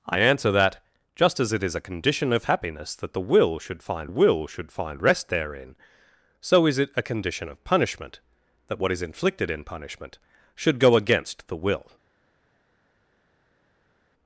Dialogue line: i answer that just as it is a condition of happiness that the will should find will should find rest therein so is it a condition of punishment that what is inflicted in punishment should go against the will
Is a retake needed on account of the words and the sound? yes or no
no